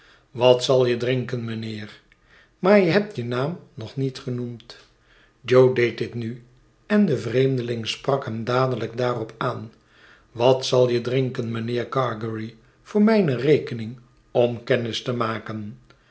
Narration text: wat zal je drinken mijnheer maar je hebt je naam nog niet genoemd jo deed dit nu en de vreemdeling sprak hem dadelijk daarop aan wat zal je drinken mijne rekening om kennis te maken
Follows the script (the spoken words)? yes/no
no